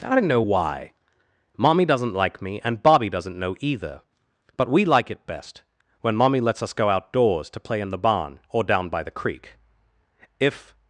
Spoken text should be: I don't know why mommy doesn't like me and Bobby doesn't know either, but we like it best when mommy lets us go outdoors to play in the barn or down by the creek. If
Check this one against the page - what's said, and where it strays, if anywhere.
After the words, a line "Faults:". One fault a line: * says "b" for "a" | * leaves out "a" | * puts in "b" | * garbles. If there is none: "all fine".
I don't know why mommy doesn't like me and Bobby doesn't know either, but we like it best when mommy lets us go outdoors to play in the barn or down by the creek. If
Faults:
all fine